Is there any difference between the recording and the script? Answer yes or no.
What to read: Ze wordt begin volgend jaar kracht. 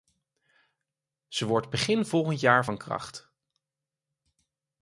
yes